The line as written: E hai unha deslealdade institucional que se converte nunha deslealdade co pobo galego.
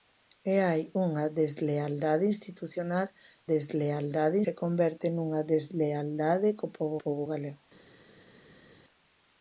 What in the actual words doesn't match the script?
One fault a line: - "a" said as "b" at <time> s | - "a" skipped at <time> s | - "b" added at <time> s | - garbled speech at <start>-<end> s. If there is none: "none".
- "que" said as "deslealdade" at 3.5 s
- "pobo" added at 7.0 s